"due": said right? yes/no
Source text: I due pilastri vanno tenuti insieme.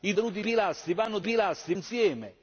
no